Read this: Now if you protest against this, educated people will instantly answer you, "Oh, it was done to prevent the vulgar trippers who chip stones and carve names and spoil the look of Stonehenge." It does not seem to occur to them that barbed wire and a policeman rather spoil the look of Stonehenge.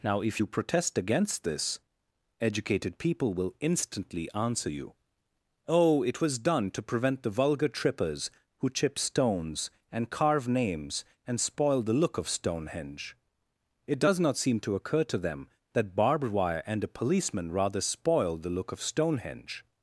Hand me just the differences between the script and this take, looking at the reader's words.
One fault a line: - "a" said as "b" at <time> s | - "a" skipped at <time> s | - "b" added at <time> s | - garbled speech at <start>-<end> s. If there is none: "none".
none